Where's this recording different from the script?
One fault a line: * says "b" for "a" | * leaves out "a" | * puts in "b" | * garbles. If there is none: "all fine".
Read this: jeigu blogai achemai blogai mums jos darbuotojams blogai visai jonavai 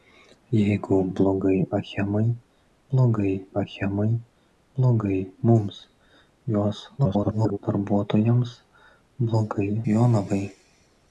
* puts in "achemai blogai"
* garbles
* leaves out "visai"